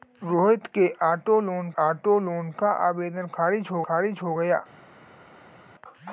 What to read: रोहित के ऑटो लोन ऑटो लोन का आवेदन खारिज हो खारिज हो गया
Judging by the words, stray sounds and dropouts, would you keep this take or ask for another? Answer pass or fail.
pass